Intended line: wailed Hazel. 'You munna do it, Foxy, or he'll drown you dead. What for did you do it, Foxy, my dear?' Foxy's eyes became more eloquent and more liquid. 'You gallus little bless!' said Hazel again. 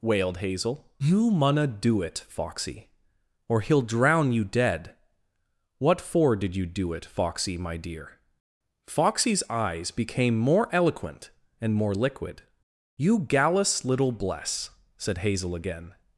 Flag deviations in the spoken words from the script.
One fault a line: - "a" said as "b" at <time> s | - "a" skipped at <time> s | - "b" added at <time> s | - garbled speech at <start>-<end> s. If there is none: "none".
none